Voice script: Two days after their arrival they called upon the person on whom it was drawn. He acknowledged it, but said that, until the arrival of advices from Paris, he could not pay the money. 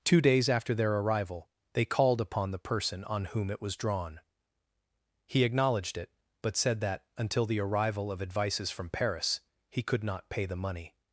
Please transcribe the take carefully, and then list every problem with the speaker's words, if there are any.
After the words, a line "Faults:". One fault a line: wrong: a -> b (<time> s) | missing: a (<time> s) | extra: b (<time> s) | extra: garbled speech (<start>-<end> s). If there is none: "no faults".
Two days after their arrival they called upon the person on whom it was drawn. He acknowledged it, but said that, until the arrival of advices from Paris, he could not pay the money.
Faults:
no faults